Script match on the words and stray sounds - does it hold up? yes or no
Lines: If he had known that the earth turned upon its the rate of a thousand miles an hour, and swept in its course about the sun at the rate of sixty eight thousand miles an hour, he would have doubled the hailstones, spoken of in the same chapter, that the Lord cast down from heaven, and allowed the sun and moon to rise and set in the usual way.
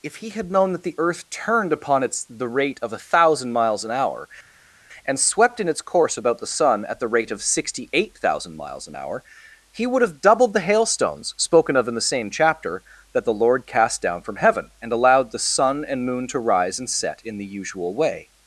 yes